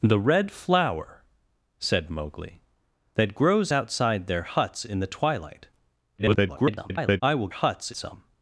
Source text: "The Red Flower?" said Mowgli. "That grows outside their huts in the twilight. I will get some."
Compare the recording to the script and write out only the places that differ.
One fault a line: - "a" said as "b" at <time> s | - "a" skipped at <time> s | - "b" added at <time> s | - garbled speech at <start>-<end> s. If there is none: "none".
- garbled speech at 6.2-7.2 s
- "get" said as "huts" at 7.5 s